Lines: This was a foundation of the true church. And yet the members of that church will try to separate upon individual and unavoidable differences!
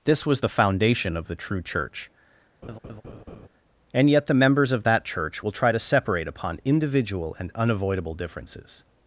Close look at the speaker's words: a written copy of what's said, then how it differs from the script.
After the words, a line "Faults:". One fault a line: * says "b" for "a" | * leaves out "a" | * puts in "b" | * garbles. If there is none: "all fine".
This was the foundation of the true church. And yet the members of that church will try to separate upon individual and unavoidable differences!
Faults:
* says "the" for "a"